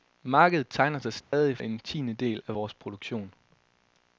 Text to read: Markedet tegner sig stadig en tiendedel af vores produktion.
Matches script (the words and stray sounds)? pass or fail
fail